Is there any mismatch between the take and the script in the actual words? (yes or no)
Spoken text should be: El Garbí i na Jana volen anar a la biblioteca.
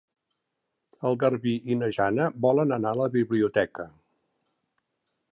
no